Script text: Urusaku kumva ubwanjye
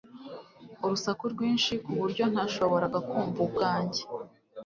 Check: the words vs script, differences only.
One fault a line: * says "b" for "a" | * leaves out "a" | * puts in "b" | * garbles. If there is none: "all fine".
* puts in "rwinshi kuburyo ntashoboraga"